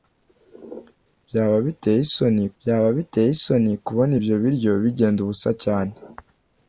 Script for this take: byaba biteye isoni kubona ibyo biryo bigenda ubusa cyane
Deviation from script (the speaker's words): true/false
true